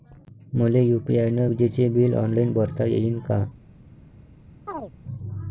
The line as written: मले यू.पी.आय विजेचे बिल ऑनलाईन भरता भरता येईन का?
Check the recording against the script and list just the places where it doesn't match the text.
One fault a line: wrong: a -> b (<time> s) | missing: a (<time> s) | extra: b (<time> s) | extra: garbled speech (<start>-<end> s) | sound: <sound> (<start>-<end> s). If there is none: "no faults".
extra: न (1.3 s)
missing: भरता (2.8 s)
sound: chirp (4.7-4.9 s)